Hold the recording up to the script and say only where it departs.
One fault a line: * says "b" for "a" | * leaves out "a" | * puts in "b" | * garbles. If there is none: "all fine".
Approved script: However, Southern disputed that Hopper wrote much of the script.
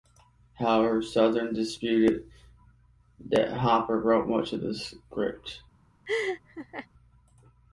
all fine